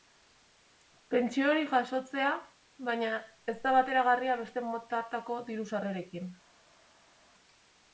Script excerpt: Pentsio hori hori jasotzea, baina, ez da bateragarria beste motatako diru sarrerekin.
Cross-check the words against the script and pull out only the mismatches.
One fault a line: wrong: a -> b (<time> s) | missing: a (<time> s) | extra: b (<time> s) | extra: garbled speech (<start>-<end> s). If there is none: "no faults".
missing: hori (1.7 s)